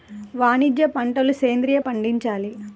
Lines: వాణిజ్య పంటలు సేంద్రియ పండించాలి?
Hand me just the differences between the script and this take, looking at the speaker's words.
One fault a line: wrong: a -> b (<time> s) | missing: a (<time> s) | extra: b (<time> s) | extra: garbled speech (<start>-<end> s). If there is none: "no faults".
no faults